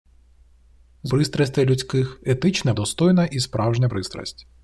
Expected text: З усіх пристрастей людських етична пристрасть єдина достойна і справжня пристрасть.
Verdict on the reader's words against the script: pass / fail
fail